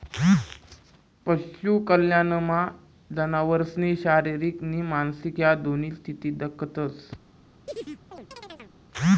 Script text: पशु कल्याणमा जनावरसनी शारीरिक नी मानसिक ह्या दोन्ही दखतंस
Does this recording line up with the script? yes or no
no